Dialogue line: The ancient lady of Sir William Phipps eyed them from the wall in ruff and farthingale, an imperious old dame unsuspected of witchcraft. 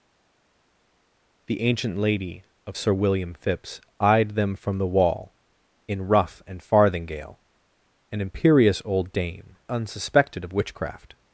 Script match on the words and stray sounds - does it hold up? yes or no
yes